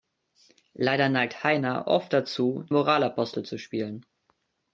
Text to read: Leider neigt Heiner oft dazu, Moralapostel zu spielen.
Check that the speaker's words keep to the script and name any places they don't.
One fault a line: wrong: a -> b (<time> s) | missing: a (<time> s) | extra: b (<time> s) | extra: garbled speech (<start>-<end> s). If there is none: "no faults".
no faults